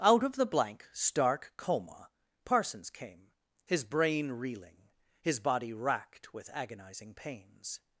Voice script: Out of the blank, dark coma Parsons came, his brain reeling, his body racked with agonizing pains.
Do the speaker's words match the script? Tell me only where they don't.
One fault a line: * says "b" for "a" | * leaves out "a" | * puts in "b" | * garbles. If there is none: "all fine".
* says "stark" for "dark"